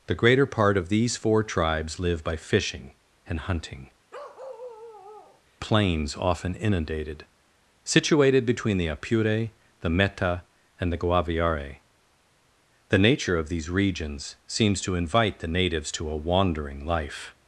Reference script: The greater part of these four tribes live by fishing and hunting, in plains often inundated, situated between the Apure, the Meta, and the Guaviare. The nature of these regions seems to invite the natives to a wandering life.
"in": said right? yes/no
no